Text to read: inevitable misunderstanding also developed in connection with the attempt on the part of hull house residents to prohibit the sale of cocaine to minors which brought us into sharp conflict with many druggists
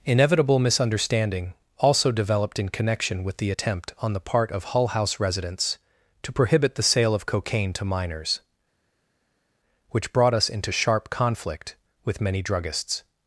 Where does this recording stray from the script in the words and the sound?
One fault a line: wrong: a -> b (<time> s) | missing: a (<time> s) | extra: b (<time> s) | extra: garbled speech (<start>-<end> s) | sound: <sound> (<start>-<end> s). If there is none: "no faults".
no faults